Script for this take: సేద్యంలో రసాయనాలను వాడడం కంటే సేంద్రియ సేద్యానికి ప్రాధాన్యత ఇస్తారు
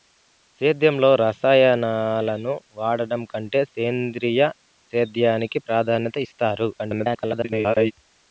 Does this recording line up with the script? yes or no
no